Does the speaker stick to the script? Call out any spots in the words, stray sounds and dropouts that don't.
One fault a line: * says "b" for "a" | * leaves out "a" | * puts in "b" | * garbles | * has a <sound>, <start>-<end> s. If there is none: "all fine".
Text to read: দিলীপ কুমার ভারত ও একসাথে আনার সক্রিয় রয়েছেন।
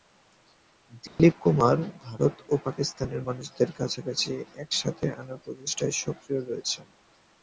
* has a dropout, 1.1-1.2 s
* puts in "পাকিস্তানের মানুষদের কাছাকাছি"
* puts in "প্রচেষ্টায়"